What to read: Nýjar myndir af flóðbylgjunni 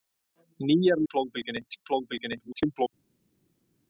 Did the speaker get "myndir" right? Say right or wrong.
wrong